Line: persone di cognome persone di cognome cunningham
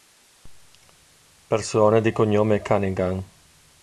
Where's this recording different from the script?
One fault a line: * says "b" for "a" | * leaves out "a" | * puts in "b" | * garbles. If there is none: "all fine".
* leaves out "persone di cognome"